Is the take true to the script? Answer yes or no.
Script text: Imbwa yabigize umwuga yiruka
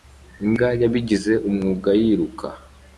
yes